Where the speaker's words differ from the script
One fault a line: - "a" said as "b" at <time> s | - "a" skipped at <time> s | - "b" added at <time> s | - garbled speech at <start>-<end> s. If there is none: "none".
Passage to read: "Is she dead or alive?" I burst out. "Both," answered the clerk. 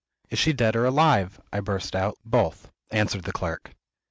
none